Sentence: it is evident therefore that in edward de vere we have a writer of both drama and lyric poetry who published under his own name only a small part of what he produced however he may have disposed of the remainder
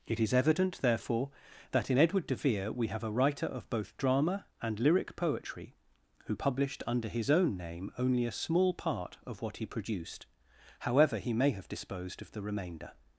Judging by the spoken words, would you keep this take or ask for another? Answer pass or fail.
pass